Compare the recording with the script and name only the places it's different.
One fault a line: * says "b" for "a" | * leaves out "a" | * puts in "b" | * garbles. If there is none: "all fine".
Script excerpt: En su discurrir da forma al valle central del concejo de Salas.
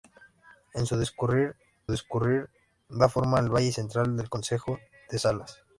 * puts in "discurrir"